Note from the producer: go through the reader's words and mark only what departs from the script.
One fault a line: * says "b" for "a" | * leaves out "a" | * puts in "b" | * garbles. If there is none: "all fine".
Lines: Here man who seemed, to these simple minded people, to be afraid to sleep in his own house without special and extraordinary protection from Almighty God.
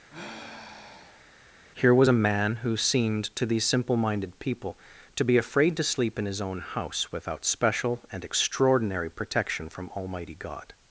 * puts in "was a"